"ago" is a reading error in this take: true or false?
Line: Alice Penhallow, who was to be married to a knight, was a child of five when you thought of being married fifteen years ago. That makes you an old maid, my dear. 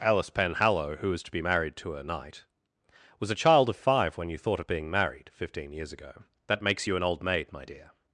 false